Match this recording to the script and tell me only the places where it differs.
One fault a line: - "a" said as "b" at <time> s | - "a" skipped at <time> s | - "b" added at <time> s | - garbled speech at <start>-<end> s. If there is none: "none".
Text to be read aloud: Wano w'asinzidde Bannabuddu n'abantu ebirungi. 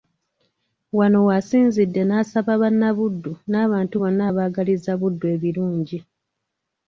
- "n'asaba" added at 2.0 s
- "bonna abaagaliza Buddu" added at 4.0 s